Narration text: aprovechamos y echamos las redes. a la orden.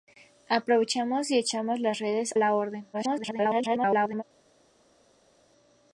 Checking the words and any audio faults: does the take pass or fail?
fail